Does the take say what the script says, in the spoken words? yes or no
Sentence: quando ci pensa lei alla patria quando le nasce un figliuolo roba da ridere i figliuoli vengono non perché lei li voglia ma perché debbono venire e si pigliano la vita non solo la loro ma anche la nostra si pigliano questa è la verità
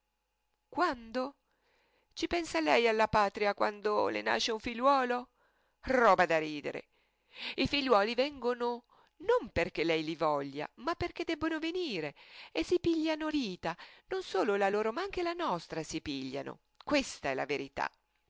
no